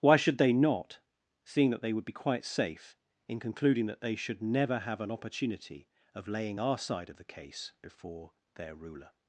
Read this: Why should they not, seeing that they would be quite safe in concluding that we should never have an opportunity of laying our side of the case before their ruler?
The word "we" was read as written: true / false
false